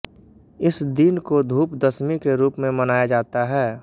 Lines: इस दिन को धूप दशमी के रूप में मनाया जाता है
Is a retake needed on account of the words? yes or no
no